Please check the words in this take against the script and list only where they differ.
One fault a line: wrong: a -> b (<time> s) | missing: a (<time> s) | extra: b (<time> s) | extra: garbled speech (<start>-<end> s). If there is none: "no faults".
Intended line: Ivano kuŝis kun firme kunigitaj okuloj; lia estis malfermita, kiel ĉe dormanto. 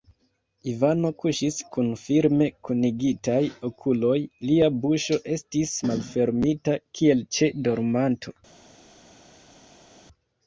extra: buŝo (4.9 s)